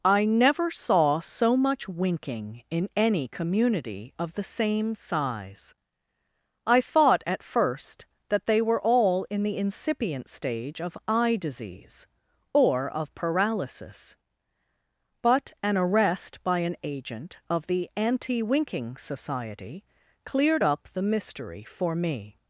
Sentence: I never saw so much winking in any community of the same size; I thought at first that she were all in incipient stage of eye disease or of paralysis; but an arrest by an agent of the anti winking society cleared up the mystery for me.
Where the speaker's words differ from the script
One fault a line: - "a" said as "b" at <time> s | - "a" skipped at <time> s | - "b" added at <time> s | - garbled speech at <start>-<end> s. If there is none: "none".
- "she" said as "they" at 8.4 s
- "the" added at 9.4 s